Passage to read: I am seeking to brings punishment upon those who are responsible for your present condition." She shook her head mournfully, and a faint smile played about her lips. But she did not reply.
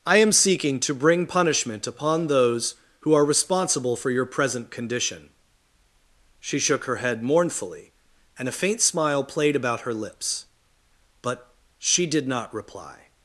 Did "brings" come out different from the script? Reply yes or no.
yes